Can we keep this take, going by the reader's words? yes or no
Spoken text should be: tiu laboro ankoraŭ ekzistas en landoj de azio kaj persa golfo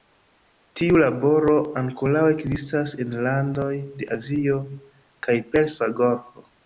yes